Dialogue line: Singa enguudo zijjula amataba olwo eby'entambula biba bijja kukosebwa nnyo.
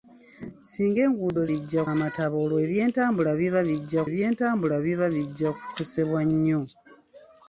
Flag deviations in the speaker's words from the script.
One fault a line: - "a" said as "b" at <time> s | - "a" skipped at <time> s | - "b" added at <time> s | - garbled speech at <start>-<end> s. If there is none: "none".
- "zijjula" said as "bijja" at 1.5 s
- "eby'entambula biba bijja" added at 4.1 s